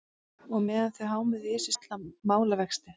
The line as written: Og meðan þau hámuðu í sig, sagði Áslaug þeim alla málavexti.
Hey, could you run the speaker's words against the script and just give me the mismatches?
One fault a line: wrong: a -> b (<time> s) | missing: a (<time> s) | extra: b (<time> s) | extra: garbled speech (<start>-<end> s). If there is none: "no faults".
missing: sagði Áslaug þeim (1.8 s)